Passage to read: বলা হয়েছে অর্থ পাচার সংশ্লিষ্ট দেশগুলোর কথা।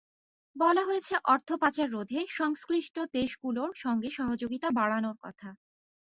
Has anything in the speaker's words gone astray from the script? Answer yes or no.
yes